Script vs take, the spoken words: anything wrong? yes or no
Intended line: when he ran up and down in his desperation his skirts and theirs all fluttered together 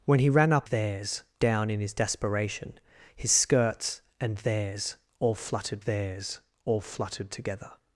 yes